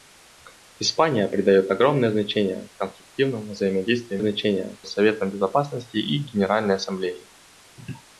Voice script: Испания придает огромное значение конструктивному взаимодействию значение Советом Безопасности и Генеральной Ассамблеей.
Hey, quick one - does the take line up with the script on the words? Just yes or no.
yes